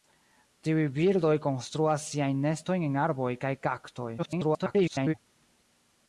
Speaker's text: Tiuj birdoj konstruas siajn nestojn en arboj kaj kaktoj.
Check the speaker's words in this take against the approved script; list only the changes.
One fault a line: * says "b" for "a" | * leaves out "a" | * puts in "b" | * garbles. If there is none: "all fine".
* garbles